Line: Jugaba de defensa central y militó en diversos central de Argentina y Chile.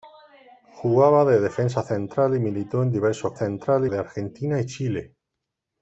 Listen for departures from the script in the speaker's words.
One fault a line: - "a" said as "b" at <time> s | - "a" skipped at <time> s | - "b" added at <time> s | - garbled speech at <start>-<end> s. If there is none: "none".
none